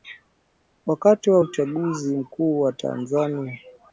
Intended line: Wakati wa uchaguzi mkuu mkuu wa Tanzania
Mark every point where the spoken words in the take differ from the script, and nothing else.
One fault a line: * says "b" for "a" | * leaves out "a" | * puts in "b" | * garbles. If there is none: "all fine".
* leaves out "mkuu"